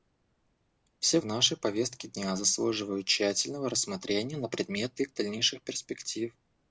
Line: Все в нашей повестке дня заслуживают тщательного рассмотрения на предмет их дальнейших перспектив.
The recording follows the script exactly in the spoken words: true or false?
true